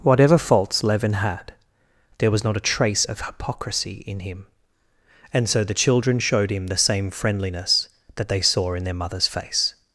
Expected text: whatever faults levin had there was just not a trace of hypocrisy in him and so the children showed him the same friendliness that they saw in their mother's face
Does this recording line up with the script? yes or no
no